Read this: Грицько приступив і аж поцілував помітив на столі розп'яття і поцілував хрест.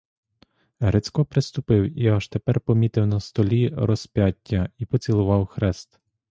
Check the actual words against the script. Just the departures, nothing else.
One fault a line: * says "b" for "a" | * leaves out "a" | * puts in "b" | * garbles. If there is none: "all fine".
* says "тепер" for "поцілував"